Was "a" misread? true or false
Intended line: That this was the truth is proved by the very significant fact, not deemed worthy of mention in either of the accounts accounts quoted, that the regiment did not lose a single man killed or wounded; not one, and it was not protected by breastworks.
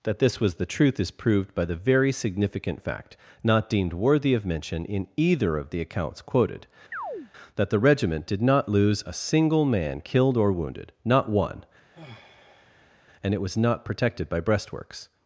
false